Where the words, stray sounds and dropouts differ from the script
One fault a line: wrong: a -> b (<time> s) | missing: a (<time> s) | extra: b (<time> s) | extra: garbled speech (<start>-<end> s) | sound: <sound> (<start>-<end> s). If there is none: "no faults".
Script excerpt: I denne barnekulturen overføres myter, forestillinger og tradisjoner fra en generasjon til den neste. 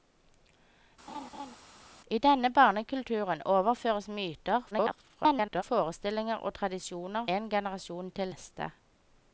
sound: laugh (1.1-1.6 s)
extra: garbled speech (4.7-5.6 s)
missing: fra (7.3 s)
missing: den (8.3 s)